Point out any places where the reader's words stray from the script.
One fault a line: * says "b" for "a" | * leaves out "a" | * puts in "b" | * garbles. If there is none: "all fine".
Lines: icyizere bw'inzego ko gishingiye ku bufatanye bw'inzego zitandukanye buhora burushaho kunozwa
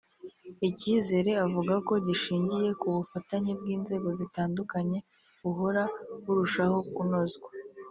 * says "avuga" for "bw'inzego"